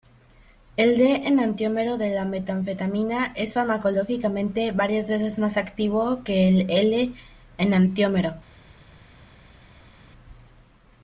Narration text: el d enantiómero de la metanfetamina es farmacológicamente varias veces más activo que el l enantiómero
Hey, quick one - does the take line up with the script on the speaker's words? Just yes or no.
yes